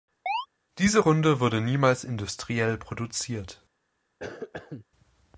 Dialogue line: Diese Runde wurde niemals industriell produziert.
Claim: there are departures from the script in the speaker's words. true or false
false